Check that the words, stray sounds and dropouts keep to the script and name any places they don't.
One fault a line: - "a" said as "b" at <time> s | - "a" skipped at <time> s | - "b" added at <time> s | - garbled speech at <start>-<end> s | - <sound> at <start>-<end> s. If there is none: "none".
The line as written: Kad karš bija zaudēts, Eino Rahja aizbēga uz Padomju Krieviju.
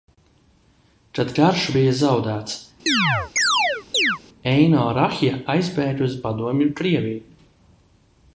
- chirp at 2.9-4.2 s